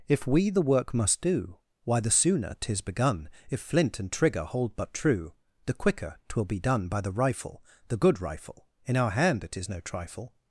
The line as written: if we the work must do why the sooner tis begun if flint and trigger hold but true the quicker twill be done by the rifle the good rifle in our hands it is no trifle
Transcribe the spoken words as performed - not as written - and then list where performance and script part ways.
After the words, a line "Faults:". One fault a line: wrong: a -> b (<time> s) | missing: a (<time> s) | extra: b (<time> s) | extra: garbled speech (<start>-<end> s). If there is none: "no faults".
if we the work must do why the sooner tis begun if flint and trigger hold but true the quicker twill be done by the rifle the good rifle in our hand it is no trifle
Faults:
wrong: hands -> hand (9.1 s)